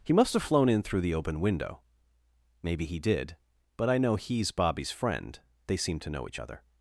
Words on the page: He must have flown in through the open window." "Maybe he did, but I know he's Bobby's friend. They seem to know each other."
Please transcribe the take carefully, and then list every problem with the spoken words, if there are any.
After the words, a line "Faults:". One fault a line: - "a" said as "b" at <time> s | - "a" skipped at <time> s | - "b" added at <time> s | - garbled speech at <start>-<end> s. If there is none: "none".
He must have flown in through the open window." "Maybe he did, but I know he's Bobby's friend. They seem to know each other."
Faults:
none